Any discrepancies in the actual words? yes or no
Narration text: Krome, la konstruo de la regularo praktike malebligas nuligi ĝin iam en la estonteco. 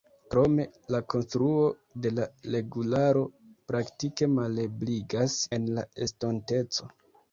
yes